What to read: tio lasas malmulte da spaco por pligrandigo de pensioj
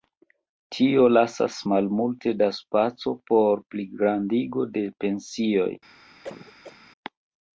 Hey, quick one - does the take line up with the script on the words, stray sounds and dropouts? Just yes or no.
no